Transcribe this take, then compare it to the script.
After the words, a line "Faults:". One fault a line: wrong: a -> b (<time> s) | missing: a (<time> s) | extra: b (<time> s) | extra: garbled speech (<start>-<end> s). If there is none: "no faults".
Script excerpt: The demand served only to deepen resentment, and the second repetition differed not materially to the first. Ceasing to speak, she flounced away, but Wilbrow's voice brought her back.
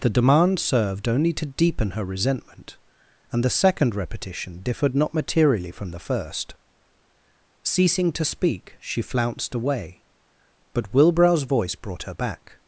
The demand served only to deepen her resentment, and the second repetition differed not materially from the first. Ceasing to speak, she flounced away, but Wilbrow's voice brought her back.
Faults:
extra: her (1.9 s)
wrong: to -> from (5.7 s)